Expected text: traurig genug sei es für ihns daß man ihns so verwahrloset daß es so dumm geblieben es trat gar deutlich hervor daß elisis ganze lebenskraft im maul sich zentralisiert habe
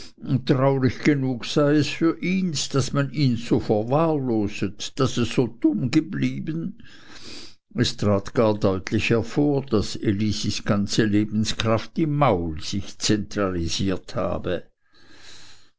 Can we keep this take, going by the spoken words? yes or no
yes